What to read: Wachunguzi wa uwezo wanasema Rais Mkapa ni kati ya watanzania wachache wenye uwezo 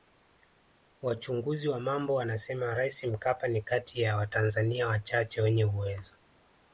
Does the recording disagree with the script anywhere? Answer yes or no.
yes